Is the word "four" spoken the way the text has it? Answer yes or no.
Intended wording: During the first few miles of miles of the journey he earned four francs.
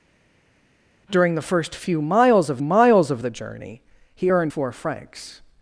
yes